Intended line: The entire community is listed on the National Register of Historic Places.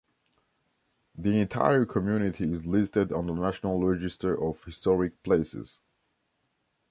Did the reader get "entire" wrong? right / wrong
right